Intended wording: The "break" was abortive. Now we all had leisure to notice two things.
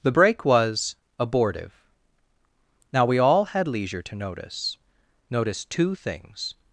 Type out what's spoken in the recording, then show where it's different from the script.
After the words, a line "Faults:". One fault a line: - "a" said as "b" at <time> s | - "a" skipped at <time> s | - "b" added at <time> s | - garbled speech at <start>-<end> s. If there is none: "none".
The "break" was abortive. Now we all had leisure to notice notice two things.
Faults:
- "notice" added at 5.3 s